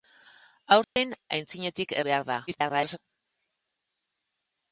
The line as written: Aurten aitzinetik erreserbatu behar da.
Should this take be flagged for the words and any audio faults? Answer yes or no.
yes